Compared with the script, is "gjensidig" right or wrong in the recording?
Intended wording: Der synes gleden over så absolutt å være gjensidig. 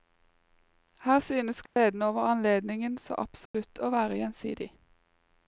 right